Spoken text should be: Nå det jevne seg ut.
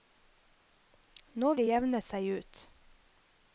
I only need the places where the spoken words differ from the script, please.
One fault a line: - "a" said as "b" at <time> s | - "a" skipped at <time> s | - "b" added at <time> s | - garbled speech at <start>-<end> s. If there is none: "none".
none